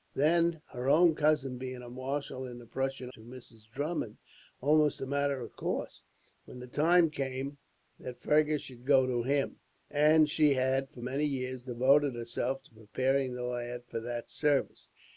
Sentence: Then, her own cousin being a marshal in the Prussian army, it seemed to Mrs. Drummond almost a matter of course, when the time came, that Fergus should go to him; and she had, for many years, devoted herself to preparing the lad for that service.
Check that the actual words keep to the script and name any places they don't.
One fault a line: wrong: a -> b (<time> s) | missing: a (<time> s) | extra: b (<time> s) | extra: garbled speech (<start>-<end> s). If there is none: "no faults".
missing: army it seemed (3.1 s)